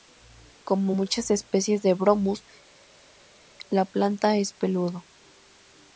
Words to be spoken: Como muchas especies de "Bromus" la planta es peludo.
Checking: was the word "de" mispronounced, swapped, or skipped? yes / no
no